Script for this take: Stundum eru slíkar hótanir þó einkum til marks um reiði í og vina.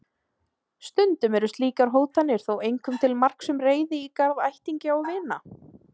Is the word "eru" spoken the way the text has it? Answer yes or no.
yes